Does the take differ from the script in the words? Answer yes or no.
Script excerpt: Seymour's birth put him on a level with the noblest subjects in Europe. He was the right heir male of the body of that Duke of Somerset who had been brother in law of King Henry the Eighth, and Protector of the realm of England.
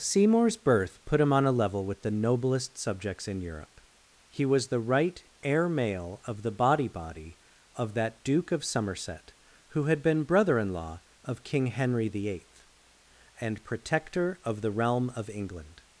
yes